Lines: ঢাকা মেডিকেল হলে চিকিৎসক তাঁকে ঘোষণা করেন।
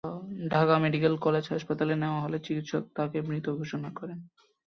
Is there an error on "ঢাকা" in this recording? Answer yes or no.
no